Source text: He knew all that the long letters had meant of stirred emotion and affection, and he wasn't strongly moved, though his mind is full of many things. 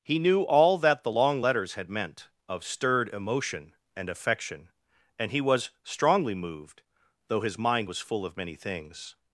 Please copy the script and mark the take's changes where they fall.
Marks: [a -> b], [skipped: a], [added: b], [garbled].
He knew all that the long letters had meant of stirred emotion and affection, and he [wasn't -> was] strongly moved, though his mind [is -> was] full of many things.